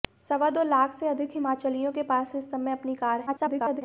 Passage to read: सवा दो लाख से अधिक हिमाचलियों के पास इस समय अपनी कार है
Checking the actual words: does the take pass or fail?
fail